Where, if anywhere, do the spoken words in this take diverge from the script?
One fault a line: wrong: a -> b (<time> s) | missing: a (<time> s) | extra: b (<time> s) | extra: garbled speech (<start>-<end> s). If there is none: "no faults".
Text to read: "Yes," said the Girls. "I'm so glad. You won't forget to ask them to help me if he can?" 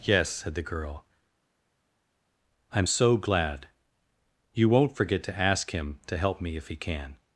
wrong: Girls -> Girl (0.6 s)
wrong: them -> him (5.7 s)